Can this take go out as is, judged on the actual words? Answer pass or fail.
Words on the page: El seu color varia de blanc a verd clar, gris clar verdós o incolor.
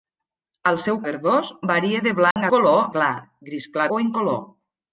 fail